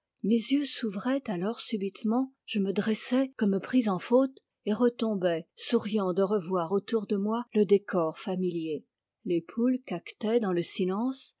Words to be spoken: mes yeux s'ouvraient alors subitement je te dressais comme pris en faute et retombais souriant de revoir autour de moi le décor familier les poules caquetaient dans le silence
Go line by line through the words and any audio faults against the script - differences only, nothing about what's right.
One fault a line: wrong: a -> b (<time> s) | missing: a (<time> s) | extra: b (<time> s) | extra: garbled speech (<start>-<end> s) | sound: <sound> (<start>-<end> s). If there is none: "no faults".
wrong: te -> me (2.6 s)